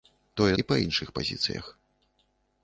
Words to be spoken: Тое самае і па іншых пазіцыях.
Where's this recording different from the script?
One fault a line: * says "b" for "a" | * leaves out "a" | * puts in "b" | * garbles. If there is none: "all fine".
* leaves out "самае"